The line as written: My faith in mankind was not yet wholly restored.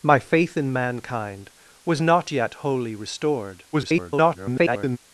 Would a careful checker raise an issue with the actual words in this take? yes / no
yes